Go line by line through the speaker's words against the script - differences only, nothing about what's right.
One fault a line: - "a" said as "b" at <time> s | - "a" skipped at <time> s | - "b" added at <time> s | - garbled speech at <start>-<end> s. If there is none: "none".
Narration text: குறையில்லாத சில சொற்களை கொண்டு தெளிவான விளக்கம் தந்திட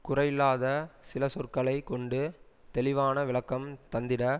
none